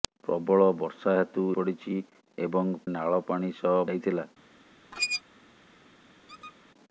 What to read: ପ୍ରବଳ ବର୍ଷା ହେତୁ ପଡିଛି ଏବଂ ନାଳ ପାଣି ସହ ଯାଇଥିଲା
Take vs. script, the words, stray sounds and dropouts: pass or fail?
fail